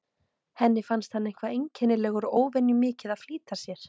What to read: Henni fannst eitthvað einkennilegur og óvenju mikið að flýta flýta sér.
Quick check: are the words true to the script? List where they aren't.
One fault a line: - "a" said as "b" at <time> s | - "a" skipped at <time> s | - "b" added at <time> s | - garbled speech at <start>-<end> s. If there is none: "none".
- "hann" added at 1.2 s
- "flýta" skipped at 3.6 s